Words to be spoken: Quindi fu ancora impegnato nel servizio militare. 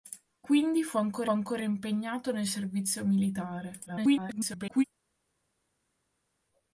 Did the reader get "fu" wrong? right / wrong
right